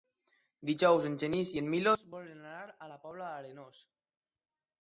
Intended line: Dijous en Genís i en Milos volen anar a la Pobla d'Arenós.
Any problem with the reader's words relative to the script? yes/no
no